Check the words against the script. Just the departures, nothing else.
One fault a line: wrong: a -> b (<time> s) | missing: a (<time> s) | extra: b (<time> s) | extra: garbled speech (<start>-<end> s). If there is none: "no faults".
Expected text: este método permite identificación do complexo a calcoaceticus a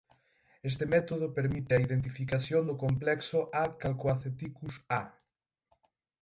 extra: a (1.7 s)